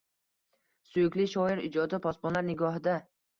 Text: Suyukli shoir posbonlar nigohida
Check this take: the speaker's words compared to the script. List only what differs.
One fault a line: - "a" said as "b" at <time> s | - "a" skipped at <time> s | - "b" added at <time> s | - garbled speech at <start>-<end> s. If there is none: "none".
- "ijodi" added at 1.7 s